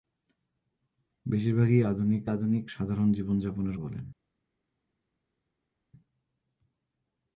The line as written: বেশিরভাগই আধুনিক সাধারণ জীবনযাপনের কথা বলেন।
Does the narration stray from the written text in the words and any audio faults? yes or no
yes